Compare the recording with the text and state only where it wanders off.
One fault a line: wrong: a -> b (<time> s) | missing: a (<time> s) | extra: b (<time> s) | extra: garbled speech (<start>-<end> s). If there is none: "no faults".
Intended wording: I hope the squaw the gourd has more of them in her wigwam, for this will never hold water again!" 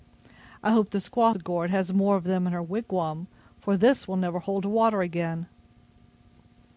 no faults